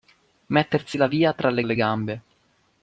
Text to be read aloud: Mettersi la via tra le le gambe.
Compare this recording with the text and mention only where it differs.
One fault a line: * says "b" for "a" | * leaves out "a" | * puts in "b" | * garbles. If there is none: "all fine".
all fine